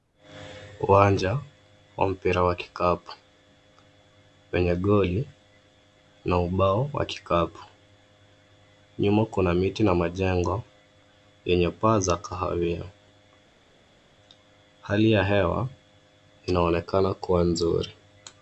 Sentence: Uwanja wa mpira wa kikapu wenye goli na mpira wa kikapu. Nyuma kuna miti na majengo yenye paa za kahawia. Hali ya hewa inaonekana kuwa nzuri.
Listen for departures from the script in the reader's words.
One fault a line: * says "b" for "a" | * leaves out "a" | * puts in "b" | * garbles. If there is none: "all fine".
* says "ubao" for "mpira"